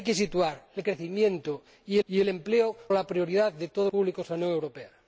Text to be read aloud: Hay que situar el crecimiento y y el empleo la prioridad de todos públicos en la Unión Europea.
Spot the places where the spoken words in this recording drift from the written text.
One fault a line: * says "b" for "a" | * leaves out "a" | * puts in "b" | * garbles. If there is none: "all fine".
all fine